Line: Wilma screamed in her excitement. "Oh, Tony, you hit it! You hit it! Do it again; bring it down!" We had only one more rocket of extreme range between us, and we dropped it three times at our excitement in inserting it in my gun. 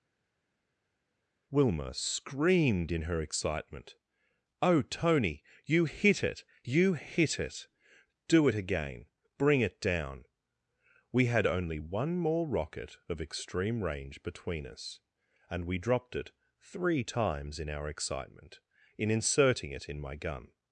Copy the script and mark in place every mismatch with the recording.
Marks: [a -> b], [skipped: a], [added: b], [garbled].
Wilma screamed in her excitement. "Oh, Tony, you hit it! You hit it! Do it again; bring it down!" We had only one more rocket of extreme range between us, and we dropped it three times [at -> in] our excitement in inserting it in my gun.